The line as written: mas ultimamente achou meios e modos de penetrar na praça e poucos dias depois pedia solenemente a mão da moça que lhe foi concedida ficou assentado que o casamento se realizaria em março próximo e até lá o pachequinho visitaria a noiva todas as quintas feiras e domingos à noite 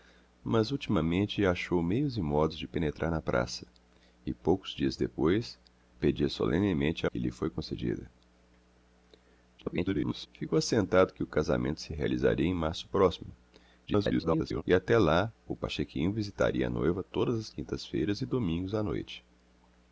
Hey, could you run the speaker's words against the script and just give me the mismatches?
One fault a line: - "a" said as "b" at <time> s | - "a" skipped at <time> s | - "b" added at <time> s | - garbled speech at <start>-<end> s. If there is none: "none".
- "mão da moça" skipped at 7.1 s
- garbled speech at 9.6-10.3 s
- garbled speech at 13.9-14.6 s